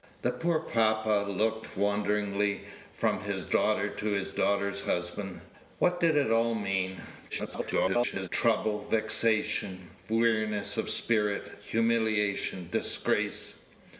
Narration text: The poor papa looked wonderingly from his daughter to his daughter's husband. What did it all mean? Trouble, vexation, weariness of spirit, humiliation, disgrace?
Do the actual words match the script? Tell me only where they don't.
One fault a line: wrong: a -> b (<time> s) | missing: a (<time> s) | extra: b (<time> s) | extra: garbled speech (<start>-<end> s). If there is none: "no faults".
extra: garbled speech (7.3-8.3 s)